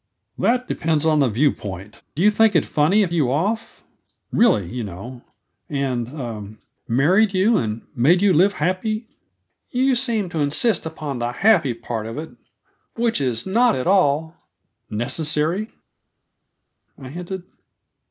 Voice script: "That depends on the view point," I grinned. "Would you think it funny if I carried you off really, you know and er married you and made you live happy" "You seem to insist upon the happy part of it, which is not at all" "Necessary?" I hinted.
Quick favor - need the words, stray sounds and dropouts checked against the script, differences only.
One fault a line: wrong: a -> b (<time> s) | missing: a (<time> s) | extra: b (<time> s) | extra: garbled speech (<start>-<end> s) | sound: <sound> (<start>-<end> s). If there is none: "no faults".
missing: I grinned Would (2.0 s)
missing: I carried (3.1 s)